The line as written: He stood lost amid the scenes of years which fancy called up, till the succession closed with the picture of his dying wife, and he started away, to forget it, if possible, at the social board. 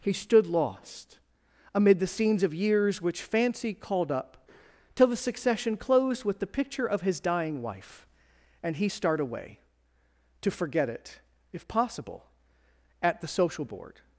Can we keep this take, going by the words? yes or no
no